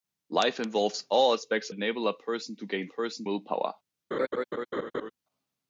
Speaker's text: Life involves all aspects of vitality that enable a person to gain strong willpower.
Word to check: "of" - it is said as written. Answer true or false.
false